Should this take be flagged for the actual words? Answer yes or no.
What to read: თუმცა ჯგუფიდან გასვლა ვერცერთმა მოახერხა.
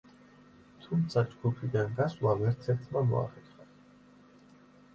no